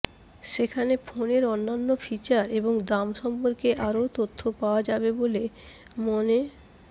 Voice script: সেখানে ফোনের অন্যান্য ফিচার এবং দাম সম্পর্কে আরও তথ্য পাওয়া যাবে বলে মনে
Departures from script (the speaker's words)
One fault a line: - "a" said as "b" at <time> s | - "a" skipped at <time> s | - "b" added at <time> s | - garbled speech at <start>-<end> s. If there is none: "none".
none